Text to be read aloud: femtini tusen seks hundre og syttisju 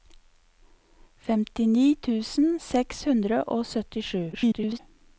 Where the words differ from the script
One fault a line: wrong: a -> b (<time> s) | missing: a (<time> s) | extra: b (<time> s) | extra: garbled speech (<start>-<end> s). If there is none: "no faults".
extra: garbled speech (4.3-4.8 s)